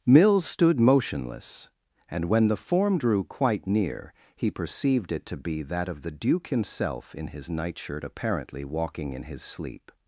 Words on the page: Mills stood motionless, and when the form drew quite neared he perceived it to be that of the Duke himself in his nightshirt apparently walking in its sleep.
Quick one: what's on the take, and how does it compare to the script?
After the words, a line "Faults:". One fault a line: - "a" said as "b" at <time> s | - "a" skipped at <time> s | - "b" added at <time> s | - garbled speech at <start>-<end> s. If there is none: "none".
Mills stood motionless, and when the form drew quite near he perceived it to be that of the Duke himself in his nightshirt apparently walking in his sleep.
Faults:
- "neared" said as "near" at 3.7 s
- "its" said as "his" at 9.2 s